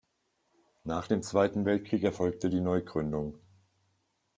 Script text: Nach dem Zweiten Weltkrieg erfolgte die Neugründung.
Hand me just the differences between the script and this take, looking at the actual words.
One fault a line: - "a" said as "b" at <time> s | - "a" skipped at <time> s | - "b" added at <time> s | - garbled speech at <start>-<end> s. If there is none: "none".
none